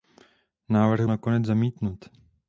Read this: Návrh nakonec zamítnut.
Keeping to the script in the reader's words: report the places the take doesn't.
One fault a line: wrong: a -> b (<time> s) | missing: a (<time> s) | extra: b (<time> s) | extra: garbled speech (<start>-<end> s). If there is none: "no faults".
no faults